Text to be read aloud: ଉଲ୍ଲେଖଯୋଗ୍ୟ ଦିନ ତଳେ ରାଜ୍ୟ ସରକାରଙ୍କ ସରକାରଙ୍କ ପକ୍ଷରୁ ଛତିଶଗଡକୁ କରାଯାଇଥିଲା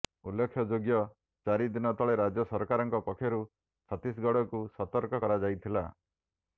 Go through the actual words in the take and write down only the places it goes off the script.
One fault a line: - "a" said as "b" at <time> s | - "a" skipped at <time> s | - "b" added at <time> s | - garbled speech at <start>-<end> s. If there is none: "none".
- "ଚାରି" added at 1.4 s
- "ସରକାରଙ୍କ" skipped at 3.0 s
- "ସତର୍କ" added at 4.8 s